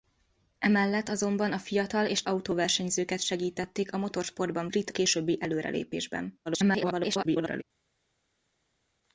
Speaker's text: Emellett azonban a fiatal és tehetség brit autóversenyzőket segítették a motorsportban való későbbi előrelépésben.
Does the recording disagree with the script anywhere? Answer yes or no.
yes